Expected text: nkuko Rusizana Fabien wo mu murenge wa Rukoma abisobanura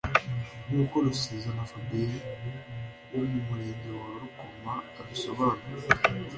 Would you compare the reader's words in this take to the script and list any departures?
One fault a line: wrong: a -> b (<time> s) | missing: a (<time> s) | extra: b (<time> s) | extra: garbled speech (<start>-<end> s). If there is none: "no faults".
no faults